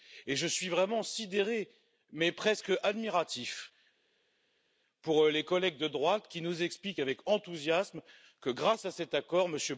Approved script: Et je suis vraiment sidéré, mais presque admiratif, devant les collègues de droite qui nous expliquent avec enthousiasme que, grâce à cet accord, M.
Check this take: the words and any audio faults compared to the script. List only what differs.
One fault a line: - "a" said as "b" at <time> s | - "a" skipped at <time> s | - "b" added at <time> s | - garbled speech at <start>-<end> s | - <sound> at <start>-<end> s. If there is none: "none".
none